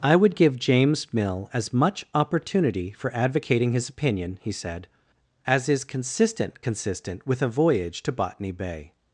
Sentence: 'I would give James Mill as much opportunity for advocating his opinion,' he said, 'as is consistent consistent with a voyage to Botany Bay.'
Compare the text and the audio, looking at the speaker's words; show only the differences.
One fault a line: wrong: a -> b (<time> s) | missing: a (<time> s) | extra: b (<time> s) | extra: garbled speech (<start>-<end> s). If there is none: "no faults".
no faults